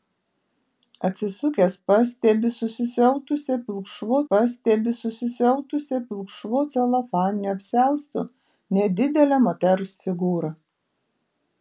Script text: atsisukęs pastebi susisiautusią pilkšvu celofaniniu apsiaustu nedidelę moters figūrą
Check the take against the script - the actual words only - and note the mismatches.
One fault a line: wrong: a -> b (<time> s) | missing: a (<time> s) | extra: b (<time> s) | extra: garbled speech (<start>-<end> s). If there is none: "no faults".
extra: pastebi susisiautusią pilkšvu (4.3 s)